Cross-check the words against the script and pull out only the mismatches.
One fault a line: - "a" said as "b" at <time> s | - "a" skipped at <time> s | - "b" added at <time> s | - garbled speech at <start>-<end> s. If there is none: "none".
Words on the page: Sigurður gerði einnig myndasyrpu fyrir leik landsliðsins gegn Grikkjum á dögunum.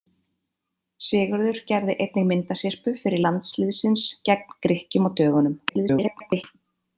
- "leik" skipped at 3.2 s
- garbled speech at 5.7-6.4 s